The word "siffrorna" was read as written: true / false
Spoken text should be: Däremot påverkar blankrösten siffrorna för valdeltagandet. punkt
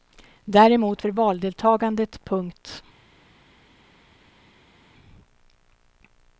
false